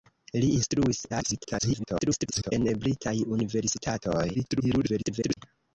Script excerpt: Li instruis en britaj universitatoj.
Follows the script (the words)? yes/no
no